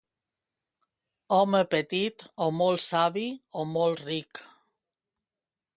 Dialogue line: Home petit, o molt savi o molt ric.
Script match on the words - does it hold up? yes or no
yes